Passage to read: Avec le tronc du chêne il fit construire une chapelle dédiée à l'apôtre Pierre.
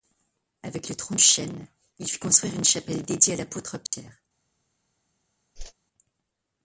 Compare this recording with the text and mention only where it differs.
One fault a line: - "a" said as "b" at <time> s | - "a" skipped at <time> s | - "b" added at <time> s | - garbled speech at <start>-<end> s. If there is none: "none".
- "du" skipped at 1.1 s